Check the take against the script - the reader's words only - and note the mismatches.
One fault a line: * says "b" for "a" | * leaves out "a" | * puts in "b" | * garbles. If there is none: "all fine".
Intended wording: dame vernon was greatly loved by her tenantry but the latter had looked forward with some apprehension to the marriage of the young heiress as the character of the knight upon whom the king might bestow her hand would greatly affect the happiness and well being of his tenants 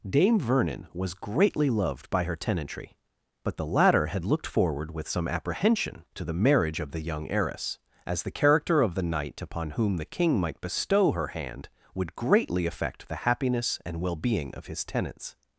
all fine